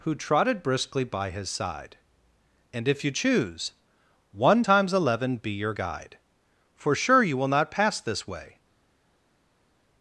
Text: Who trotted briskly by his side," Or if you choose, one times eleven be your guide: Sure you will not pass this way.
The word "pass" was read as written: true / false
true